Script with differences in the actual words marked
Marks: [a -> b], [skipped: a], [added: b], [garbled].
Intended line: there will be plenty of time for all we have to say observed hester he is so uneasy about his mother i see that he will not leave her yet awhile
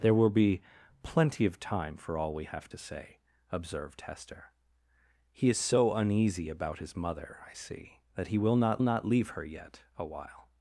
there will be plenty of time for all we have to say observed hester he is so uneasy about his mother i see that he will not [added: not] leave her yet awhile